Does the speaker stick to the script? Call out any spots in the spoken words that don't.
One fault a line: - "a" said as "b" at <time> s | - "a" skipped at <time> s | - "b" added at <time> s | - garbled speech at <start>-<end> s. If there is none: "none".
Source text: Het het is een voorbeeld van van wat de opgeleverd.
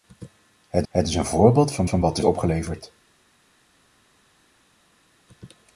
none